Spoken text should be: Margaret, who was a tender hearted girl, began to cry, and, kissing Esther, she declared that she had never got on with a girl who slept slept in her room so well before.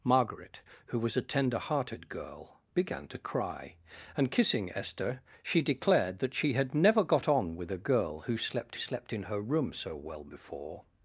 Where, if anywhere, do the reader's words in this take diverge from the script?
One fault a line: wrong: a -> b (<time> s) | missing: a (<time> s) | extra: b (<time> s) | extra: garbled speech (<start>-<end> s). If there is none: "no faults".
no faults